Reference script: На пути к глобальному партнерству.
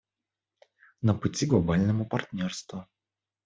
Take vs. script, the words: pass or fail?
pass